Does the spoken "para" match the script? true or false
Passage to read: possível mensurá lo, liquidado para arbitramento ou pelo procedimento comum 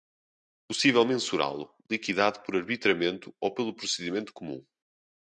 false